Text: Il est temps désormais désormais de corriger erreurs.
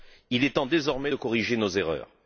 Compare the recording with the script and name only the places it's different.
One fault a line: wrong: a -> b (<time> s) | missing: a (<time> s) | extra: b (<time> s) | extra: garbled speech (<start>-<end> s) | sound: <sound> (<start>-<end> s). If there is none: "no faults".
missing: désormais (1.1 s)
extra: nos (1.6 s)